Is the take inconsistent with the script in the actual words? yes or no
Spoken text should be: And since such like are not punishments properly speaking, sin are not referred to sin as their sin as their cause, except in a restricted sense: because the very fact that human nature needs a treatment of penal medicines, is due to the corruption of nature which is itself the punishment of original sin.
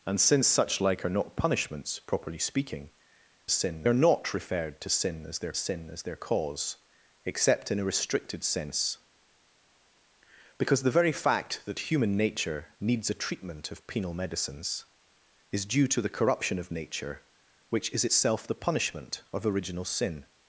no